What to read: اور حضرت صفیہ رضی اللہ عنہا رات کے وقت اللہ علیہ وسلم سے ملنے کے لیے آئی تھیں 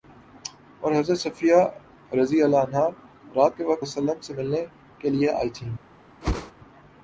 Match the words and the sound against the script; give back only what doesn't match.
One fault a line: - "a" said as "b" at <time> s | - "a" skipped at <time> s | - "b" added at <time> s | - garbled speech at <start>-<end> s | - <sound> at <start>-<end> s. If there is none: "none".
- whoosh at 6.2-6.5 s